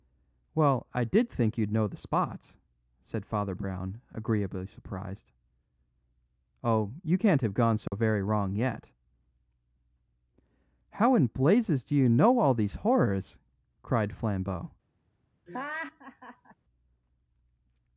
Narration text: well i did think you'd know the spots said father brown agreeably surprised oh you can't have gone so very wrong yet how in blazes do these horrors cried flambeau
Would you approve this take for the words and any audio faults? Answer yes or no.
no